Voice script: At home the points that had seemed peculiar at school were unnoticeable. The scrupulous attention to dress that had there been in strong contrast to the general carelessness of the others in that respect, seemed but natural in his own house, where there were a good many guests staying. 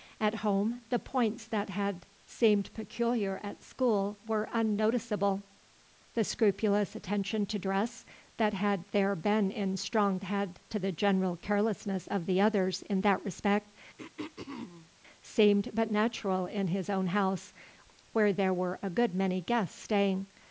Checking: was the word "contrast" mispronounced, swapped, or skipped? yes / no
yes